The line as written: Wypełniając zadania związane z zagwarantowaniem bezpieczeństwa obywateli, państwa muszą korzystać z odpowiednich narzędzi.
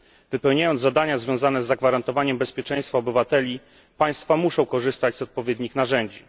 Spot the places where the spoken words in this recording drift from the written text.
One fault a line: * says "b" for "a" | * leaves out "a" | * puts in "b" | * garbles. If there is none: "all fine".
all fine